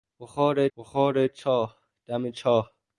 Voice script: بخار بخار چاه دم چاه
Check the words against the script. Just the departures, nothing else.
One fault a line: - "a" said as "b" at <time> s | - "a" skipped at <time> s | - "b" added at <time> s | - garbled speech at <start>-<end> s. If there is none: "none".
none